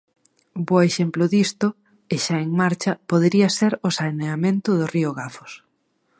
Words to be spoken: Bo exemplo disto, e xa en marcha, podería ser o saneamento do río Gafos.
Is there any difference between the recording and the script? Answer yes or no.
no